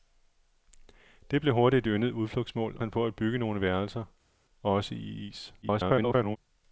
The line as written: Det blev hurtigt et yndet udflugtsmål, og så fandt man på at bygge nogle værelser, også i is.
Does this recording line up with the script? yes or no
no